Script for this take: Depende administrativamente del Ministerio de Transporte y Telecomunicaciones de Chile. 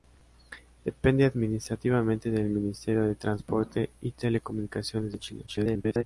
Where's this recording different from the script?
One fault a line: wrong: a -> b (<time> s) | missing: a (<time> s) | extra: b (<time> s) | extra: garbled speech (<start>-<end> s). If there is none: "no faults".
extra: garbled speech (5.5-6.0 s)